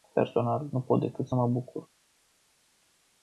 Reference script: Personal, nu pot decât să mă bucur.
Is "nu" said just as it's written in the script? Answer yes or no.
yes